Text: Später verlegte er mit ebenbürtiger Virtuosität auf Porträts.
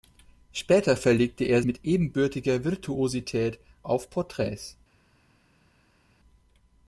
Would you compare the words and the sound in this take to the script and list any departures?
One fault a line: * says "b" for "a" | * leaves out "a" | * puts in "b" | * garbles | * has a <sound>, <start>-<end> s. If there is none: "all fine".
all fine